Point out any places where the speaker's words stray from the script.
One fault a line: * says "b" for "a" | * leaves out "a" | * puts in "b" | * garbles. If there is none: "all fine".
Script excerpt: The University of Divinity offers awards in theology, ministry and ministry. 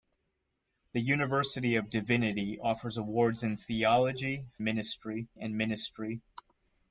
all fine